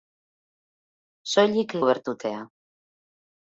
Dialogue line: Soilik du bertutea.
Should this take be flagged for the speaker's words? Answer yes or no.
no